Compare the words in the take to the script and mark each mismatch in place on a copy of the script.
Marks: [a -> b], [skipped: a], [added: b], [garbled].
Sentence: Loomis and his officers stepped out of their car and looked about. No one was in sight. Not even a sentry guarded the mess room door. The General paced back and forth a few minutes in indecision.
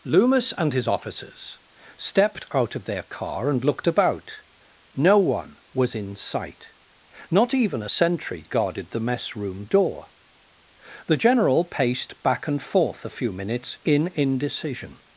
Loomis and his officers stepped out of their car and looked about. No one was in sight. Not even a sentry guarded the mess room door. The General paced back and forth a few minutes in indecision.